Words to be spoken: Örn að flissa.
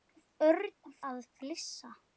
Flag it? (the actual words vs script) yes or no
no